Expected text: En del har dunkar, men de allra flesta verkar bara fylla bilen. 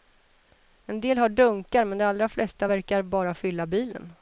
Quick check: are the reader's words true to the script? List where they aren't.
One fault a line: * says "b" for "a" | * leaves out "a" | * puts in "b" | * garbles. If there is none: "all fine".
all fine